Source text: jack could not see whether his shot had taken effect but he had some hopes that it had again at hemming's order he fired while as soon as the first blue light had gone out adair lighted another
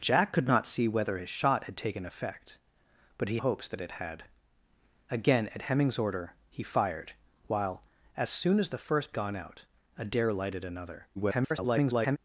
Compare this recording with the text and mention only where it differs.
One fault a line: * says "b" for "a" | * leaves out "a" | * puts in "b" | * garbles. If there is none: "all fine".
* leaves out "had some"
* leaves out "blue light had"
* garbles